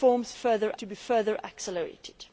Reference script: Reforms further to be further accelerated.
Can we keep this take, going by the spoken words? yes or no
yes